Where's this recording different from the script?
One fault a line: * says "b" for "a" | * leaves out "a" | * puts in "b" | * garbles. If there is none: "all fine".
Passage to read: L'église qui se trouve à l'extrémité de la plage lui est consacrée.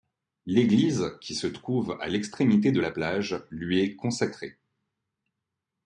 all fine